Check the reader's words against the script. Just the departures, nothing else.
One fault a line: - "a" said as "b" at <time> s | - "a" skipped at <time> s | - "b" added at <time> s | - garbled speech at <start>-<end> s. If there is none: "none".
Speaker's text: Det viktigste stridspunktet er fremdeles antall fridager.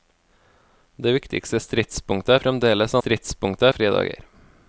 - "antall" said as "stridspunktet" at 3.0 s